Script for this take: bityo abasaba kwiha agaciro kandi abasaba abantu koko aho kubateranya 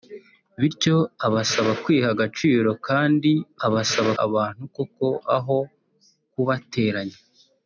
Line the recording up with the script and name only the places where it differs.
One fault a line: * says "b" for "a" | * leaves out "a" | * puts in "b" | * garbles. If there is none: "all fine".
all fine